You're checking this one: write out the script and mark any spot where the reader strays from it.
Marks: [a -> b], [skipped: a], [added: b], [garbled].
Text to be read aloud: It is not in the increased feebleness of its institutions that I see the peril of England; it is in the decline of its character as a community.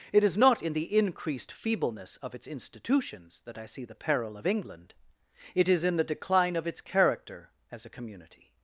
It is not in the increased feebleness of its institutions that I see the peril of England; it is in the decline of its character as a community.